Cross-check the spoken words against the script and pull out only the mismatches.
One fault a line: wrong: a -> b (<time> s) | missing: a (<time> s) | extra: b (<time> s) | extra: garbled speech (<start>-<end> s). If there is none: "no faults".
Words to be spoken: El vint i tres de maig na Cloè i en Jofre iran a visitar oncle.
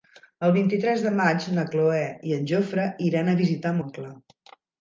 no faults